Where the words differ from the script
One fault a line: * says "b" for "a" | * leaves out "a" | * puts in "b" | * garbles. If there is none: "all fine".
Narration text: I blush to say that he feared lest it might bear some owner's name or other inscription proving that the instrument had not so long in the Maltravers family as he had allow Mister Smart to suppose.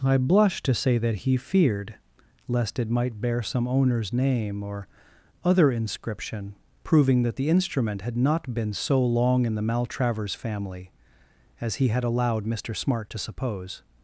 * puts in "been"
* says "allowed" for "allow"